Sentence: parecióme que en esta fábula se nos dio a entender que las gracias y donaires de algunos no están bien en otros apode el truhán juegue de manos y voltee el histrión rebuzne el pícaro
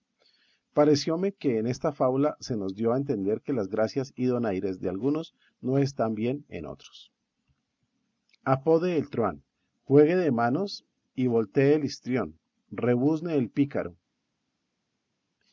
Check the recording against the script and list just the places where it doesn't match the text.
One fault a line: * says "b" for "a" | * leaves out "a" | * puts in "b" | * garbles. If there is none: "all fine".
all fine